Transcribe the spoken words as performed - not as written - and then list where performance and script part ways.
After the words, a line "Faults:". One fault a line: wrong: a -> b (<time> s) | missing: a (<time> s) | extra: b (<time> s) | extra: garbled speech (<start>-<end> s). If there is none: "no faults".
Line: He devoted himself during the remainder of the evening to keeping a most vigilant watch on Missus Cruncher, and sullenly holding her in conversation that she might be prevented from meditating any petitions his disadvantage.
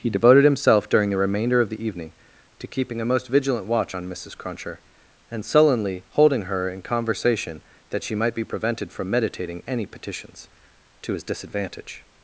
He devoted himself during the remainder of the evening to keeping a most vigilant watch on Missus Cruncher, and sullenly holding her in conversation that she might be prevented from meditating any petitions to his disadvantage.
Faults:
extra: to (11.0 s)